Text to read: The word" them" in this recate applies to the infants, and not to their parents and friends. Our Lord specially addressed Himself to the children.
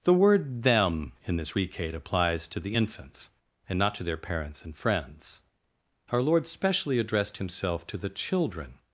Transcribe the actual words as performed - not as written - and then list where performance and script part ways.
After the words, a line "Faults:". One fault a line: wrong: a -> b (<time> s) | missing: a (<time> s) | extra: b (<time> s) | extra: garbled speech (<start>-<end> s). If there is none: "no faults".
The word" them" in this recate applies to the infants, and not to their parents and friends. Our Lord specially addressed Himself to the children.
Faults:
no faults